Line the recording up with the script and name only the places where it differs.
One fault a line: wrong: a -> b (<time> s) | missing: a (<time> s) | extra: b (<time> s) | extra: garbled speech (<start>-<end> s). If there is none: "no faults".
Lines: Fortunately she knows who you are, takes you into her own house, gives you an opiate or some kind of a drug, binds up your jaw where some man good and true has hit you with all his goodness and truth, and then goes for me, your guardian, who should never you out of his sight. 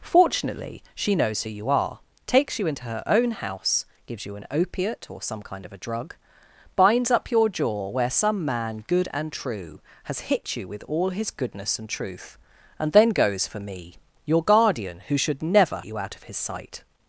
no faults